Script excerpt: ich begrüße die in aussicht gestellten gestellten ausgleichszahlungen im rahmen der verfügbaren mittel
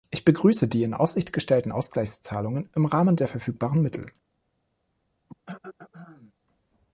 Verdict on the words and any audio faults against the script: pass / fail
fail